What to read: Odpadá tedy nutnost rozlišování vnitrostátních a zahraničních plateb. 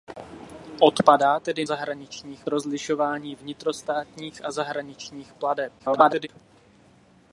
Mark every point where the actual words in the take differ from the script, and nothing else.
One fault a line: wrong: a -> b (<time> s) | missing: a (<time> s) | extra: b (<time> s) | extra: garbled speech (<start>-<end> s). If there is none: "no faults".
wrong: nutnost -> zahraničních (1.6 s)
extra: garbled speech (5.8-6.3 s)